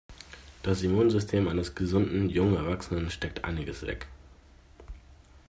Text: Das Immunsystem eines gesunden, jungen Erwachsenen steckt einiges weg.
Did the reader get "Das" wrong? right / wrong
right